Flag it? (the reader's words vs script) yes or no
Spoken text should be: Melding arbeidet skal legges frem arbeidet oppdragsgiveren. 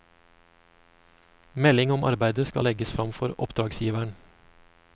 yes